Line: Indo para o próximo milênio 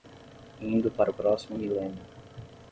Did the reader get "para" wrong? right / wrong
right